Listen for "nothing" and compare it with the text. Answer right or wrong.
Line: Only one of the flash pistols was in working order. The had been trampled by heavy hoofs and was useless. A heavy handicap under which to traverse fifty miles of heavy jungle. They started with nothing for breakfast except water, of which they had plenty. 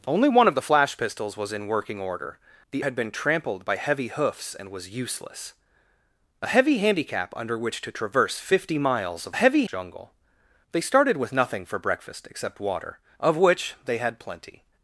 right